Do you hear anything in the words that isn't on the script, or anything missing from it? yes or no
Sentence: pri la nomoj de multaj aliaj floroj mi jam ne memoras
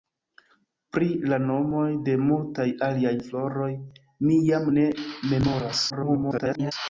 yes